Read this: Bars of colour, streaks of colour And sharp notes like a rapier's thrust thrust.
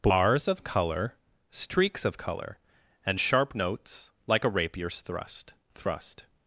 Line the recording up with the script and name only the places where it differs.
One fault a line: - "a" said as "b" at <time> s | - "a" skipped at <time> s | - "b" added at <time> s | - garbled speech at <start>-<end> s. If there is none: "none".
none